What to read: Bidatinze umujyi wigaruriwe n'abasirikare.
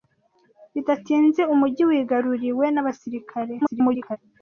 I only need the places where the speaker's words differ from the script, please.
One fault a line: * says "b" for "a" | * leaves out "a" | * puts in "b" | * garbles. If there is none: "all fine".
* garbles